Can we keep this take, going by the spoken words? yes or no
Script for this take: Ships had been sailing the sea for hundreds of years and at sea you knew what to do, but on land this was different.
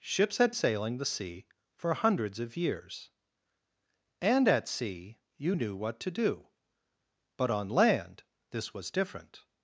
no